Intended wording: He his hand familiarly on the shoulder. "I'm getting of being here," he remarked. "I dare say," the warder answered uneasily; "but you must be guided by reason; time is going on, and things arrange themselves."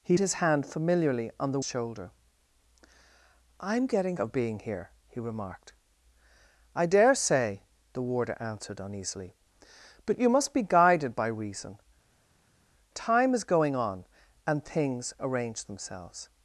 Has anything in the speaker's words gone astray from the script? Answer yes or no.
no